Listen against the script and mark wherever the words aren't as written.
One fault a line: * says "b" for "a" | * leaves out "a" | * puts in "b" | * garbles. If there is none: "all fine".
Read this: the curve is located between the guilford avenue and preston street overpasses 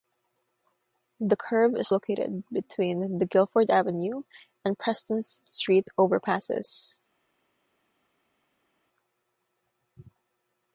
all fine